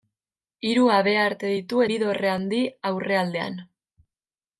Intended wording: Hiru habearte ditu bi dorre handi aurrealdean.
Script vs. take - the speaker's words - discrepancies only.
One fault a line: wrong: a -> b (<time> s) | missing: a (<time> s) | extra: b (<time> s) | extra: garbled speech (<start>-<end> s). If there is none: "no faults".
no faults